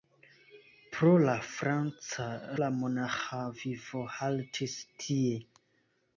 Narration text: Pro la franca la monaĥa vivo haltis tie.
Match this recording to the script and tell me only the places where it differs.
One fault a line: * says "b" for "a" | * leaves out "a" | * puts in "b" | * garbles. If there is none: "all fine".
all fine